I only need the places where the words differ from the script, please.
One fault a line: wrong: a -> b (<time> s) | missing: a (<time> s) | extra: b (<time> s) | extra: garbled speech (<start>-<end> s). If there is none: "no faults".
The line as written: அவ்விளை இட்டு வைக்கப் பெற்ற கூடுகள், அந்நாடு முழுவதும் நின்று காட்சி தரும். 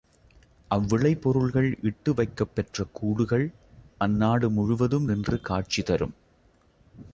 extra: பொருள்கள் (1.2 s)